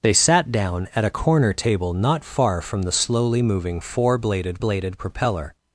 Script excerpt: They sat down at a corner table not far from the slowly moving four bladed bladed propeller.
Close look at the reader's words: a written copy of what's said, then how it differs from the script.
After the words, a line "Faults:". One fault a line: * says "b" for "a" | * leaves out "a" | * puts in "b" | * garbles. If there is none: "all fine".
They sat down at a corner table not far from the slowly moving four bladed bladed propeller.
Faults:
all fine